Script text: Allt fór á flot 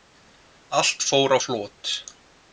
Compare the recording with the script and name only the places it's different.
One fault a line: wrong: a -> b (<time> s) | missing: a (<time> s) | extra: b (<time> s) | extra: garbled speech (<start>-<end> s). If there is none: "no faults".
no faults